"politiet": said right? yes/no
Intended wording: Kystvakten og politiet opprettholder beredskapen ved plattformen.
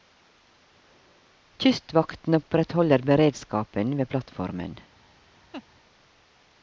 no